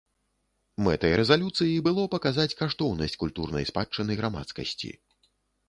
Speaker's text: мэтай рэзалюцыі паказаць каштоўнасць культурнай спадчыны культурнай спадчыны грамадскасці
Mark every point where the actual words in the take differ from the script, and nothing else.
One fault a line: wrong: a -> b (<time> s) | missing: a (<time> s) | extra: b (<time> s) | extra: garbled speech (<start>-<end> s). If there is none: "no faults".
extra: было (1.9 s)
missing: культурнай спадчыны (4.1 s)